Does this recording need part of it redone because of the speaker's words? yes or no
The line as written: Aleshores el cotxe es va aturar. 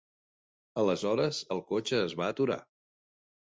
no